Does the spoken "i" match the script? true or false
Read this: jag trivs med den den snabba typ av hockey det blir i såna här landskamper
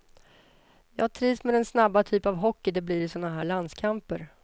true